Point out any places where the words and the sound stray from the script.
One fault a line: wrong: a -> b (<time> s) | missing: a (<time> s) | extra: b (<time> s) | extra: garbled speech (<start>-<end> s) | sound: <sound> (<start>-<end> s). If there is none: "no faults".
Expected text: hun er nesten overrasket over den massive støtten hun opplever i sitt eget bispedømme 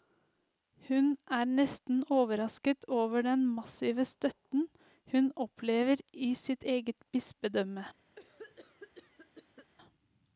sound: cough (8.2-9.7 s)